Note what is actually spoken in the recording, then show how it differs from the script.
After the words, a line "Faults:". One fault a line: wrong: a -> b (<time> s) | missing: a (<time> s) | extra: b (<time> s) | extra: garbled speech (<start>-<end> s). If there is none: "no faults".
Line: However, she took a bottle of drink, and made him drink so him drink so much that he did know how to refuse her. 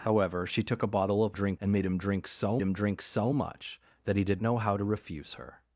However, she took a bottle of drink, and made him drink so him drink so much that he did know how to refuse her.
Faults:
no faults